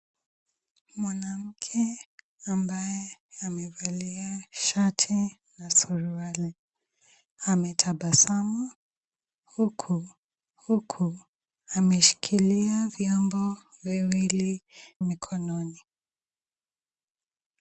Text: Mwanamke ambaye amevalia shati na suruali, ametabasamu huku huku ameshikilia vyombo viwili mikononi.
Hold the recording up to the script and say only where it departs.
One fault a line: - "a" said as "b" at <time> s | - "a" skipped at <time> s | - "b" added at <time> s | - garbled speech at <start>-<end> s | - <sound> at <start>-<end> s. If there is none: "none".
none